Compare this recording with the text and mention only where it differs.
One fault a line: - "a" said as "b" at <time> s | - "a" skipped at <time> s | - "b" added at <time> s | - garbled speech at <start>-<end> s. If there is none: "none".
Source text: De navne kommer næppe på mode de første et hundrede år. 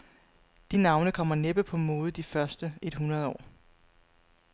none